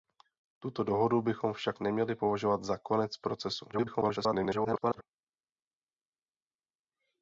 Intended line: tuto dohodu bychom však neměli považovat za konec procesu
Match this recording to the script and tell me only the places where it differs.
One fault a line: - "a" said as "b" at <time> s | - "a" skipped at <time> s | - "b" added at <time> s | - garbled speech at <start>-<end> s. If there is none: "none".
- garbled speech at 3.7-5.0 s